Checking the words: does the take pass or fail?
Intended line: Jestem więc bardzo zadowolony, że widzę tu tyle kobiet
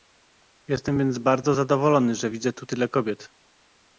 pass